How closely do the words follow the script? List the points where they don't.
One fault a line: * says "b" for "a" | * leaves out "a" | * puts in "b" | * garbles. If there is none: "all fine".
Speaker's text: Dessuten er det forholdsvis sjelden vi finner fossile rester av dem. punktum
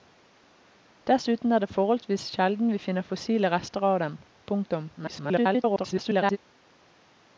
* garbles